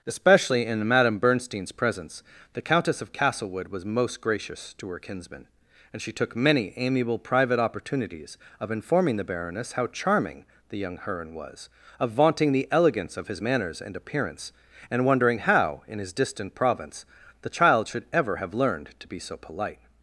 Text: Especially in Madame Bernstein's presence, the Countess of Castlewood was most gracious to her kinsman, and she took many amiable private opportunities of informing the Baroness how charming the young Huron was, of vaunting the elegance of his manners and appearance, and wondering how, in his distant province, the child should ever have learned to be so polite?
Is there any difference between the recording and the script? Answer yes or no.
no